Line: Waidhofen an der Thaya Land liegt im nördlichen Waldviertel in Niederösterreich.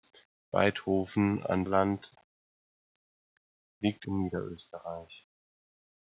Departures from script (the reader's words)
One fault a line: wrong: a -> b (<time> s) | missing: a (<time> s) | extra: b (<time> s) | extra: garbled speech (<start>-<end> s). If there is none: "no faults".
missing: der Thaya (1.6 s)
missing: im nördlichen Waldviertel (4.1 s)